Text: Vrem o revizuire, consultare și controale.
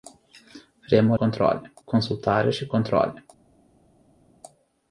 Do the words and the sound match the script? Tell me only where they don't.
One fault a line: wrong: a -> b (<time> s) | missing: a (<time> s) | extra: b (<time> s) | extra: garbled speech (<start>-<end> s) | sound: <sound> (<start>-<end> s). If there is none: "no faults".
wrong: revizuire -> controale (1.1 s)